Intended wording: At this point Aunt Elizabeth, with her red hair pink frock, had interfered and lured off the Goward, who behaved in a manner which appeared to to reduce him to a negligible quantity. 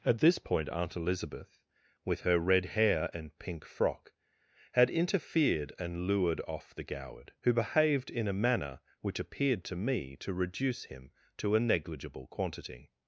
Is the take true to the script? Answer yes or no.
no